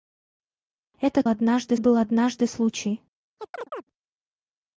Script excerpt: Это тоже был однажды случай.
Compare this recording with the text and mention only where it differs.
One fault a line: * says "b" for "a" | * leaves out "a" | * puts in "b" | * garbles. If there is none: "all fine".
* says "однажды" for "тоже"